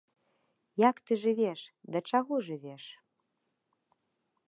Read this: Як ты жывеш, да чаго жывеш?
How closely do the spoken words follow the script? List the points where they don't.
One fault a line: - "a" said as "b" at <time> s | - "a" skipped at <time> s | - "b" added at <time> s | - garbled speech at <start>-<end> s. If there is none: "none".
none